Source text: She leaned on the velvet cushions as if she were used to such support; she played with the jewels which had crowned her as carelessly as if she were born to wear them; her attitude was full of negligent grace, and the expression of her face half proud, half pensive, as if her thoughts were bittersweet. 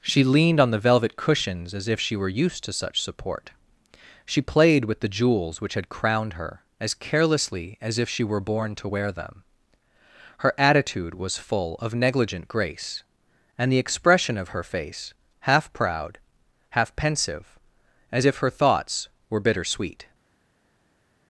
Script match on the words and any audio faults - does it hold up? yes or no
yes